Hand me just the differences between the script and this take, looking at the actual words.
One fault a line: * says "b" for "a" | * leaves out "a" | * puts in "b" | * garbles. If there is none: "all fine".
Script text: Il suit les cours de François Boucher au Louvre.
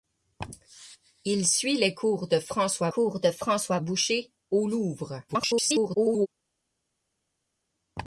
* puts in "cours de François"
* garbles